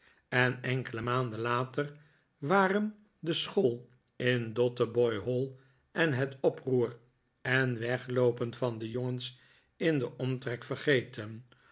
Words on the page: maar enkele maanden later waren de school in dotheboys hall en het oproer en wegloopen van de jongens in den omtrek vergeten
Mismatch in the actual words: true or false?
true